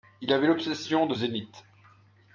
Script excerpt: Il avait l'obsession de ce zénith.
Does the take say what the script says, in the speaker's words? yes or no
no